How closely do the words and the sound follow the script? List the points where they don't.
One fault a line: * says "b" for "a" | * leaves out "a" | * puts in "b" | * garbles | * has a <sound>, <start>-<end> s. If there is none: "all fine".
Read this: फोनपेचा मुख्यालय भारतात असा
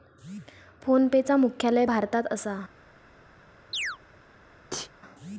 * has a chirp, 3.7-4.0 s
* has a sneeze, 4.7-4.9 s